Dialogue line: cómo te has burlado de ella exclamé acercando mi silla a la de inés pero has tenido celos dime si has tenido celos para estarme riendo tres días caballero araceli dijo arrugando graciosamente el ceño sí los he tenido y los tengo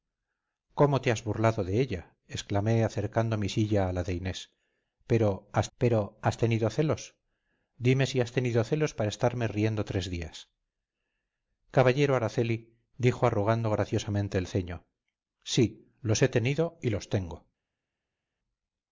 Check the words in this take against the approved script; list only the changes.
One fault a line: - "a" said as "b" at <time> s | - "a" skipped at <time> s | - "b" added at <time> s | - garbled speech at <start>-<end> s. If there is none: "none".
- "pero has" added at 5.8 s